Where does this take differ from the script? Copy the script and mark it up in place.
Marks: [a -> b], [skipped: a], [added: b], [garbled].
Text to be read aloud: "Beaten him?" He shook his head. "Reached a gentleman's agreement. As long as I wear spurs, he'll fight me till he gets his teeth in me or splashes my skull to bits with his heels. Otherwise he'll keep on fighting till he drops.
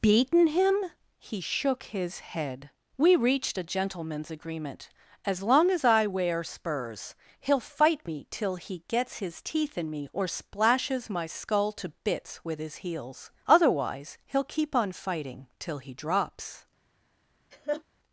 "Beaten him?" He shook his head. [added: We] "Reached a gentleman's agreement. As long as I wear spurs, he'll fight me till he gets his teeth in me or splashes my skull to bits with his heels. Otherwise he'll keep on fighting till he drops.